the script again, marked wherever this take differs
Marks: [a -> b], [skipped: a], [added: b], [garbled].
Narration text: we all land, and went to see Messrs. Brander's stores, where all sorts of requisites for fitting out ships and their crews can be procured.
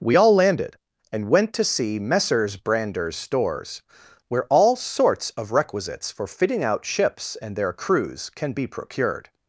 we all [land, -> landed] and went to see Messrs. Brander's stores, where all sorts of requisites for fitting out ships and their crews can be procured.